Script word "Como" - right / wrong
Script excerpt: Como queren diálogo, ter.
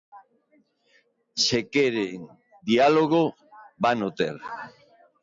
wrong